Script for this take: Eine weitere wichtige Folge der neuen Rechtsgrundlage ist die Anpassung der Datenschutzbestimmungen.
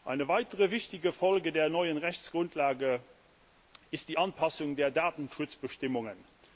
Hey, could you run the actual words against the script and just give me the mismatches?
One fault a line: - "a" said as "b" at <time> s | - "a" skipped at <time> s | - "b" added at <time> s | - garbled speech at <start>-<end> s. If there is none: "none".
none